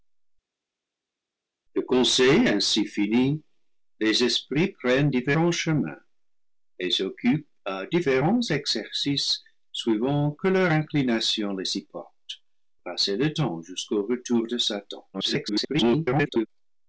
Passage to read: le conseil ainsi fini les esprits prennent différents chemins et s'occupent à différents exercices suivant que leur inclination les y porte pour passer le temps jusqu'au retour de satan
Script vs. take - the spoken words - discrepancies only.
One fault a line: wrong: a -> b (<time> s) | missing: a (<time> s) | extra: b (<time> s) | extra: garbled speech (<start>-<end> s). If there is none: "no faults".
missing: pour (12.4 s)
extra: garbled speech (15.1-16.5 s)